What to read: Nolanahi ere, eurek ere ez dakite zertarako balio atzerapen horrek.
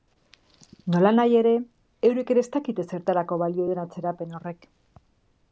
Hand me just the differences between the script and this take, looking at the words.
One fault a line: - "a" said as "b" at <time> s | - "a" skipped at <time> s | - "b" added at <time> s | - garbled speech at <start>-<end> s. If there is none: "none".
- "duen" added at 3.7 s